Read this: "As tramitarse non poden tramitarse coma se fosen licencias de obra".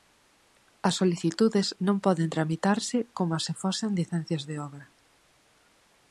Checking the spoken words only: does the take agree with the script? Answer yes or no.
no